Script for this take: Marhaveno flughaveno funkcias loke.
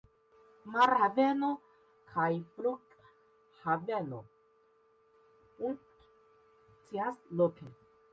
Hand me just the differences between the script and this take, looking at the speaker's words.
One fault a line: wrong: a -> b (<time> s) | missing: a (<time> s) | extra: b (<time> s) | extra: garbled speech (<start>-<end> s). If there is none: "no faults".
extra: kaj (2.1 s)